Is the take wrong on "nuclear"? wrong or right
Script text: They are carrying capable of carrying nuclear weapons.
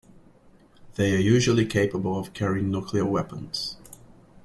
right